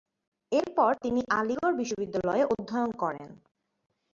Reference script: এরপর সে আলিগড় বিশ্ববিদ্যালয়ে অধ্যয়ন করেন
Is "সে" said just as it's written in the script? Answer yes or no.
no